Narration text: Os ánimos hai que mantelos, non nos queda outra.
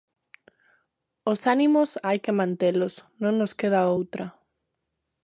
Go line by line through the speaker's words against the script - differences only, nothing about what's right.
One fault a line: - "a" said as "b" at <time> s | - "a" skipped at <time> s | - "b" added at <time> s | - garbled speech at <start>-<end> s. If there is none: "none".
none